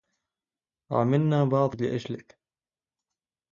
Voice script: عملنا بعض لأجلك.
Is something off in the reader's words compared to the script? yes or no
no